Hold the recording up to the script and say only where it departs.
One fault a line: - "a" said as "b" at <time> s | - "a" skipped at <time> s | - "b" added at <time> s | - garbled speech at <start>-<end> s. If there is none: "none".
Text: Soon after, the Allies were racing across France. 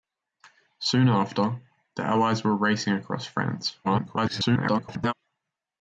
- garbled speech at 3.8-5.1 s